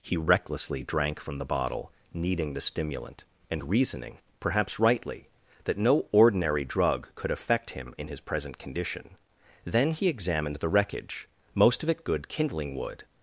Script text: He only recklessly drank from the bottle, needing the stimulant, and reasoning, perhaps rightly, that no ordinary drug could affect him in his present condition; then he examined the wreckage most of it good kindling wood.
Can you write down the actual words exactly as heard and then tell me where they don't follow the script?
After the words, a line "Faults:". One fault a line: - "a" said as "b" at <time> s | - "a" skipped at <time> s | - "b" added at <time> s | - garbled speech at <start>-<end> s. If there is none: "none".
He recklessly drank from the bottle, needing the stimulant, and reasoning, perhaps rightly, that no ordinary drug could affect him in his present condition; then he examined the wreckage most of it good kindling wood.
Faults:
- "only" skipped at 0.2 s